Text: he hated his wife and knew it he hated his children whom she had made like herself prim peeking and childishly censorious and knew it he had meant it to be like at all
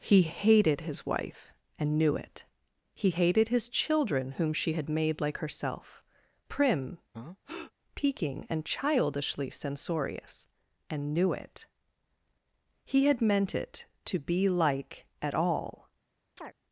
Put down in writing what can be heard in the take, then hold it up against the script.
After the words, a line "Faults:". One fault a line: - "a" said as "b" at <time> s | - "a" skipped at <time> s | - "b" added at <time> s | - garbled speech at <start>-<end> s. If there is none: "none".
he hated his wife and knew it he hated his children whom she had made like herself prim peeking and childishly censorious and knew it he had meant it to be like at all
Faults:
none